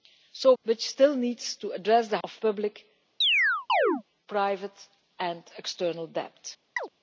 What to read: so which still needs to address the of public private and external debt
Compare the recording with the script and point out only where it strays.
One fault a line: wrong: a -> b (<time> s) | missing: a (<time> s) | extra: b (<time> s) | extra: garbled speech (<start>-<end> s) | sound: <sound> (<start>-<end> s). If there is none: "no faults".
sound: chirp (3.2-4.0 s)
sound: chirp (6.8-6.9 s)